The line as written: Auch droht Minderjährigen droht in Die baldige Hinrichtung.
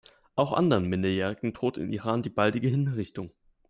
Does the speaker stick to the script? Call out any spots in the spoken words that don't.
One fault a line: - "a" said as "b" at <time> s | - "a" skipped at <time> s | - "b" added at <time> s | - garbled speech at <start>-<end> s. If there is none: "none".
- "droht" said as "anderen" at 0.5 s
- "Iran" added at 1.9 s